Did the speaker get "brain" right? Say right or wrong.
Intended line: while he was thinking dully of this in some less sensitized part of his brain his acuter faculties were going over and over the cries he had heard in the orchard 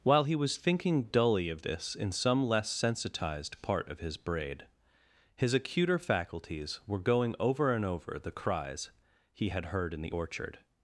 wrong